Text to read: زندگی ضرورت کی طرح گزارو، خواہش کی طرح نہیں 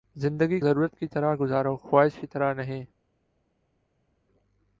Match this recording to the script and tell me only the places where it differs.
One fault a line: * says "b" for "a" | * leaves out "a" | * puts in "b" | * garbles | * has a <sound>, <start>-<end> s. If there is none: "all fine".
all fine